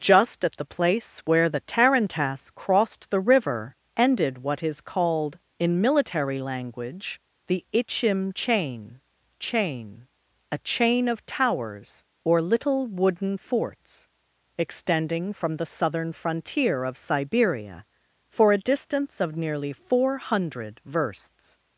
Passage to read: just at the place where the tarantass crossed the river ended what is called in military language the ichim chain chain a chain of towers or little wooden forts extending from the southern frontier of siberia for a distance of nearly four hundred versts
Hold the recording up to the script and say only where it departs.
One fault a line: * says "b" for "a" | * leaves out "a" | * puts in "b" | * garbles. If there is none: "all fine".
all fine